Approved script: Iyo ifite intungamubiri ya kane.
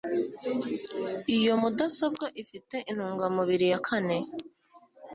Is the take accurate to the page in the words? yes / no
no